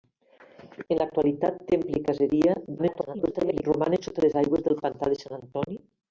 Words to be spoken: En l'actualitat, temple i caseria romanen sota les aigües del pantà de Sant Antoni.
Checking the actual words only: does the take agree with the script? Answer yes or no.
no